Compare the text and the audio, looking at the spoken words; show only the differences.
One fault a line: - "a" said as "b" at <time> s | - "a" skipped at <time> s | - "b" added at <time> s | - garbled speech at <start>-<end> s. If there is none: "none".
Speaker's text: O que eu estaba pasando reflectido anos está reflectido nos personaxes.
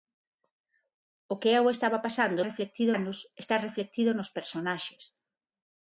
none